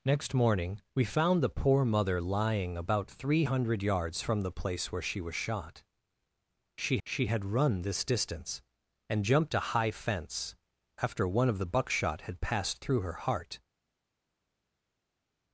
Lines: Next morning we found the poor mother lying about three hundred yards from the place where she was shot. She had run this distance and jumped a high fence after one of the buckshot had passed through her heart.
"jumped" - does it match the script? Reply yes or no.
yes